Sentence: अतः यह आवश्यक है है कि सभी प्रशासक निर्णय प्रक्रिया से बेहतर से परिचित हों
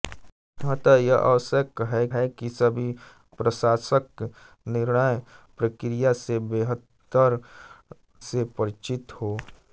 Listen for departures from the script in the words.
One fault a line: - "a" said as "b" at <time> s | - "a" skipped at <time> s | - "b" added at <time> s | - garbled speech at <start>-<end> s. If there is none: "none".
none